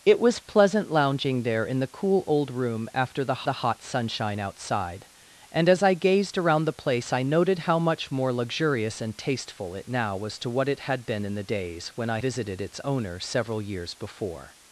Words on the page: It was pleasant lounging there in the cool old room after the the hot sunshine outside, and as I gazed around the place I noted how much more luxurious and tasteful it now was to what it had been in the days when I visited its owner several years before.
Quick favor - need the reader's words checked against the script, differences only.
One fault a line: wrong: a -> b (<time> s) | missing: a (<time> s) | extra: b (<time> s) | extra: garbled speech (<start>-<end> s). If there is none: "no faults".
no faults